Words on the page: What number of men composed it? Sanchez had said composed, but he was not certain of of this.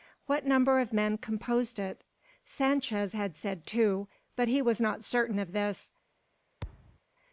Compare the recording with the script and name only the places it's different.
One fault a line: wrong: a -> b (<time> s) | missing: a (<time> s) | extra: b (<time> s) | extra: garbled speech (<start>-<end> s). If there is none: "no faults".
wrong: composed -> two (3.7 s)
missing: of (5.5 s)